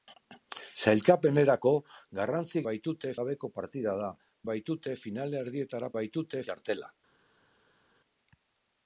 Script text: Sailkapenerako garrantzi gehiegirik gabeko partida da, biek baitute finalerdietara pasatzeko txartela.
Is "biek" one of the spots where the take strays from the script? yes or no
yes